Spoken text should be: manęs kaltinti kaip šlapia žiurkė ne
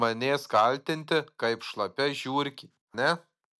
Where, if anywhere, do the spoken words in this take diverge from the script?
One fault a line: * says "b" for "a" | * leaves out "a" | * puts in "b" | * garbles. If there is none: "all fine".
all fine